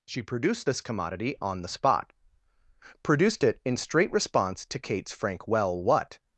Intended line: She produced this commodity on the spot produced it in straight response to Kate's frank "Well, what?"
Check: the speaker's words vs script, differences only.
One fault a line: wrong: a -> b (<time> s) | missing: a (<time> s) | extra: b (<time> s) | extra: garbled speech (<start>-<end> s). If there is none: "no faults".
no faults